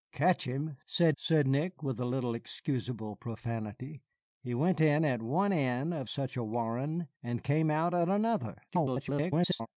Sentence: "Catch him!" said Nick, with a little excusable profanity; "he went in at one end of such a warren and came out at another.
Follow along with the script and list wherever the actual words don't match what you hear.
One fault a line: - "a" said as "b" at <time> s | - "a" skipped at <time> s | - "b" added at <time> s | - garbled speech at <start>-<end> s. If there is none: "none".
- "said" added at 1.2 s
- garbled speech at 8.7-9.7 s